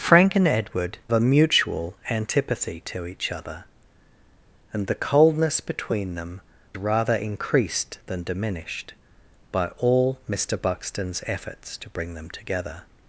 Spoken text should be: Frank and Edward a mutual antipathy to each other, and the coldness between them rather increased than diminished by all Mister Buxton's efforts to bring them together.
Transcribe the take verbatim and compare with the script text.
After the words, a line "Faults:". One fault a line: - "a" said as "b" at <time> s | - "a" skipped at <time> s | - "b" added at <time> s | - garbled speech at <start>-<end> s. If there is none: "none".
Frank and Edward a mutual antipathy to each other, and the coldness between them rather increased than diminished by all Mister Buxton's efforts to bring them together.
Faults:
none